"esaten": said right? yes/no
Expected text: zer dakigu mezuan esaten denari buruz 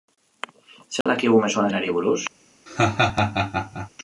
no